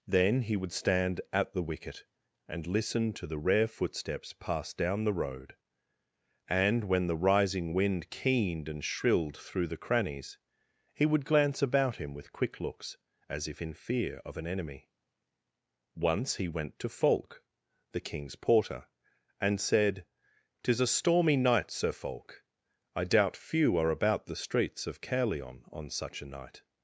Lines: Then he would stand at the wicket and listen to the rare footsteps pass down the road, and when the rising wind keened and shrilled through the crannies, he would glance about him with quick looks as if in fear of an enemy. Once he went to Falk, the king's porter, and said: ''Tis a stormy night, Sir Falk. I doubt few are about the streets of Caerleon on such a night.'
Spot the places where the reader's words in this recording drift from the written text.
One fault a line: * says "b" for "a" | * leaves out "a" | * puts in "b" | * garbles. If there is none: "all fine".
all fine